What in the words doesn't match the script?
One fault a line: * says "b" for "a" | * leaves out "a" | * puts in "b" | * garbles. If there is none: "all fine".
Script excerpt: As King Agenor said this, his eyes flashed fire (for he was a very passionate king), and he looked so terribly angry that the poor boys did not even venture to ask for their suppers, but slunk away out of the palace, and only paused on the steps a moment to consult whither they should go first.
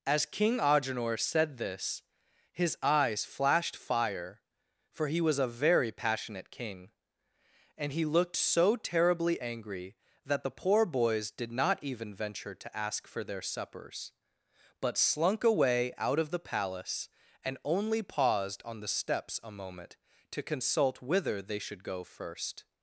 all fine